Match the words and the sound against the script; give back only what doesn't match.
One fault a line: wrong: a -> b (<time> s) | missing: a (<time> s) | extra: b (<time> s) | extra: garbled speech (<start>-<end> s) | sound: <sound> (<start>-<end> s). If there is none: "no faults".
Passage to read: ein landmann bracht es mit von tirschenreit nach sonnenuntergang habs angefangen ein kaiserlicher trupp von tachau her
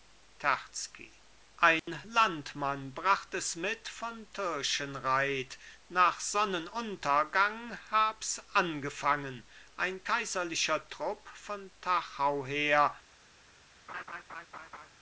sound: dropout (1.8-1.9 s)
sound: laugh (13.9-14.9 s)